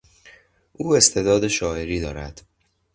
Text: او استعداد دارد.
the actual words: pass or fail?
fail